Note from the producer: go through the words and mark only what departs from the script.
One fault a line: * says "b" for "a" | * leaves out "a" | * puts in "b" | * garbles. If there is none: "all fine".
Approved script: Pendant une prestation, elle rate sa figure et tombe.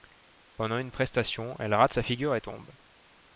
all fine